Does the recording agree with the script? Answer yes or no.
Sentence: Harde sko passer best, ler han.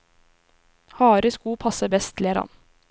yes